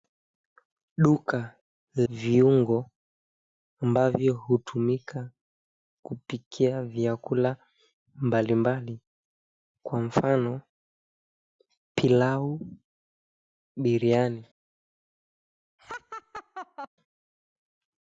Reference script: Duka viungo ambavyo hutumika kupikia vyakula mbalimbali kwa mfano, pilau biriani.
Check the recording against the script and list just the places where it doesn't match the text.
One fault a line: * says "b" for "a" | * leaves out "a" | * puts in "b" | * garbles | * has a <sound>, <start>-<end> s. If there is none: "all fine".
* has a laugh, 15.8-16.9 s